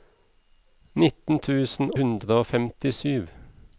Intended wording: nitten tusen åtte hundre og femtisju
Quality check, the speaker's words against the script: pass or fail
fail